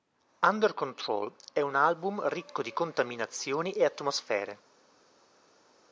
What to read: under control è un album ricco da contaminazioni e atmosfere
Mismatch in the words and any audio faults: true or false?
true